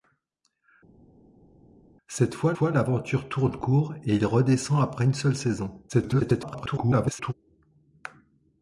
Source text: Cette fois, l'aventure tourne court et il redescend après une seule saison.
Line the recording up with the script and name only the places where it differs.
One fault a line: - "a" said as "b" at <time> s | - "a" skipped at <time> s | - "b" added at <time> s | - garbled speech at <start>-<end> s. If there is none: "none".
- "fois" added at 2.5 s
- garbled speech at 5.9-7.3 s